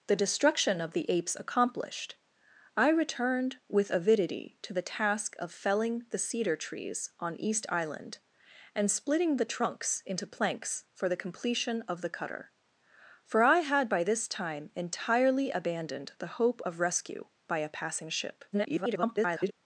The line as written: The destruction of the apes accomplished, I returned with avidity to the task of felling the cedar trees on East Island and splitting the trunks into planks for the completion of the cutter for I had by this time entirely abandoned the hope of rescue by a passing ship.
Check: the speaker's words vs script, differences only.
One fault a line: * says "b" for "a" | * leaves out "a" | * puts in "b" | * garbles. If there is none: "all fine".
* garbles